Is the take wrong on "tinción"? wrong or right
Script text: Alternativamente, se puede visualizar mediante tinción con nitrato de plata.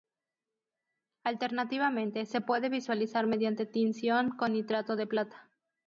right